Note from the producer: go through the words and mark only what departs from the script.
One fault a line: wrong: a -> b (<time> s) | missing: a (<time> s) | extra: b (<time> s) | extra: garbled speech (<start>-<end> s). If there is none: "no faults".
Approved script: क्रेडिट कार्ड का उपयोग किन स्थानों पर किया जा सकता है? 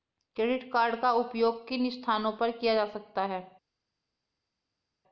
no faults